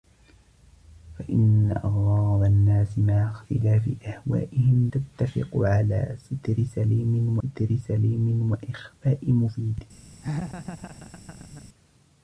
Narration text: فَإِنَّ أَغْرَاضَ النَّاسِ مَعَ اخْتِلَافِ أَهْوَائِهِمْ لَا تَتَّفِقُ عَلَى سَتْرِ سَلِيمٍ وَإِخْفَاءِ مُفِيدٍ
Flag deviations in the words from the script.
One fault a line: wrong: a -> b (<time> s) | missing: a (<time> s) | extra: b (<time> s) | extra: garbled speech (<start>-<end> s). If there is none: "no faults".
missing: لَا (4.9 s)
extra: سَتْرِ سَلِيمٍ (7.4 s)